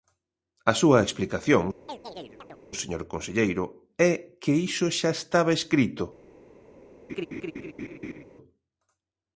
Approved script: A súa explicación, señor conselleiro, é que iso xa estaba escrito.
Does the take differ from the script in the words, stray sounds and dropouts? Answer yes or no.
yes